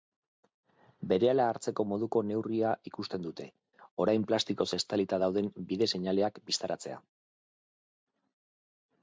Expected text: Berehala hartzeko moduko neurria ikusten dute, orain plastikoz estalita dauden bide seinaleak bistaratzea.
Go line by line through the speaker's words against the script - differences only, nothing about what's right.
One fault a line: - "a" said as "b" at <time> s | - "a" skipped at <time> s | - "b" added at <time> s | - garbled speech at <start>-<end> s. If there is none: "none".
none